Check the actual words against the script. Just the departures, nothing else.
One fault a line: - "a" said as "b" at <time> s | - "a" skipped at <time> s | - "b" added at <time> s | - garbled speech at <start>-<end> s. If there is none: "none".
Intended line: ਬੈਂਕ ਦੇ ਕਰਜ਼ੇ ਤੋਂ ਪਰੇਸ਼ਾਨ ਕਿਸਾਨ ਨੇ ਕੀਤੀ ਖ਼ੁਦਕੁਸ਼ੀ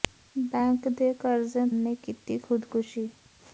- "ਤੋਂ ਪਰੇਸ਼ਾਨ ਕਿਸਾਨ" skipped at 1.6 s